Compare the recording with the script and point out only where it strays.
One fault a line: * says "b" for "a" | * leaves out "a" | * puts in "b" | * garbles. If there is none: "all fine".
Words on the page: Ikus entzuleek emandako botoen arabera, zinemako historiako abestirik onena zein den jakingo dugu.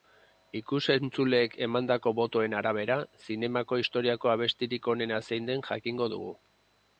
all fine